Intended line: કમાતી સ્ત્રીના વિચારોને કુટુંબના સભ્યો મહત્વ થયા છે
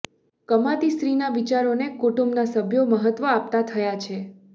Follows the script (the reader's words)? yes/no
no